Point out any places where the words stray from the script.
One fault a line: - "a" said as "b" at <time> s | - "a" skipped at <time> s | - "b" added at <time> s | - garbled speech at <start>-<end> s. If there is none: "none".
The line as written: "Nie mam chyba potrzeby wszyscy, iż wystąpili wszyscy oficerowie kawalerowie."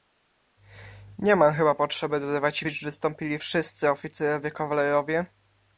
- "wszyscy" said as "dodawać" at 2.2 s